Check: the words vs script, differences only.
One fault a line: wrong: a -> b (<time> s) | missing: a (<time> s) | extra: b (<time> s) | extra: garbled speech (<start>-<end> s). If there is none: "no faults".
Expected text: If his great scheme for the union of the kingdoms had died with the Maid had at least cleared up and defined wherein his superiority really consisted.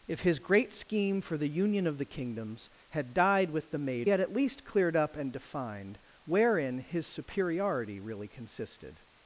no faults